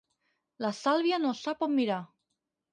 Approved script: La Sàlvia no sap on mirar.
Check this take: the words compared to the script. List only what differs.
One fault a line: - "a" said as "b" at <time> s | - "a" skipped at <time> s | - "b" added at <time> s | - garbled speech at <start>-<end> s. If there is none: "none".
none